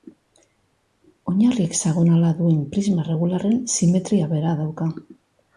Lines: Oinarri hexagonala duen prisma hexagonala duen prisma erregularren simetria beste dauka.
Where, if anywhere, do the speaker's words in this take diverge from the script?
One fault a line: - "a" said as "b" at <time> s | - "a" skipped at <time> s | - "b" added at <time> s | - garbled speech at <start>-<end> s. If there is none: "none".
- "hexagonala duen prisma" skipped at 3.0 s
- "beste" said as "bera" at 4.4 s